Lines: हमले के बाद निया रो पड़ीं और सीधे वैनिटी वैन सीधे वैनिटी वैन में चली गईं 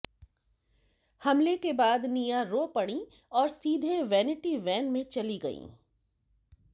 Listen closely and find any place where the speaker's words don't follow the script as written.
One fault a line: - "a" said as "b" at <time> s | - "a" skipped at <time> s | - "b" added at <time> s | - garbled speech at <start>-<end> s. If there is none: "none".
- "सीधे वैनिटी वैन" skipped at 4.9 s